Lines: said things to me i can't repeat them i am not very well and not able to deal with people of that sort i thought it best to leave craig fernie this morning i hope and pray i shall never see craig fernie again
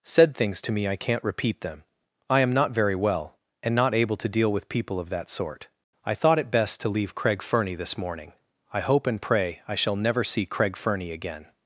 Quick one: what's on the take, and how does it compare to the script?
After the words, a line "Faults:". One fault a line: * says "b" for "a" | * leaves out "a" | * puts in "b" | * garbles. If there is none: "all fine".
said things to me i can't repeat them i am not very well and not able to deal with people of that sort i thought it best to leave craig fernie this morning i hope and pray i shall never see craig fernie again
Faults:
all fine